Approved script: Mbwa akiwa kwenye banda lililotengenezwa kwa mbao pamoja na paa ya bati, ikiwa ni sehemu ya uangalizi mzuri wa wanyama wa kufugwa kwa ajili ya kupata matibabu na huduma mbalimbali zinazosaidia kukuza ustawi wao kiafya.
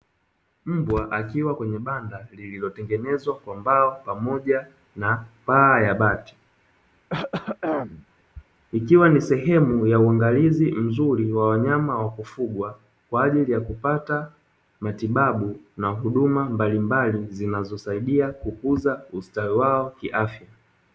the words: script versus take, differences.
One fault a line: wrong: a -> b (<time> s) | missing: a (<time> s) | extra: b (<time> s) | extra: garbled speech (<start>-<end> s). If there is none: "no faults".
no faults